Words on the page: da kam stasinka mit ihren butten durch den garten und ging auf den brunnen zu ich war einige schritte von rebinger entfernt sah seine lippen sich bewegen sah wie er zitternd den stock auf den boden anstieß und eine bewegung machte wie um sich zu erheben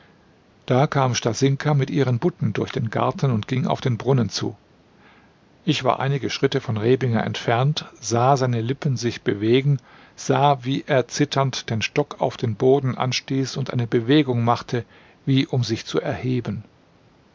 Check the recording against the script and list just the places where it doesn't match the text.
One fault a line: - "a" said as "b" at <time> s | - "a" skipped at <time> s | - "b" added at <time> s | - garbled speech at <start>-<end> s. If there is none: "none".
none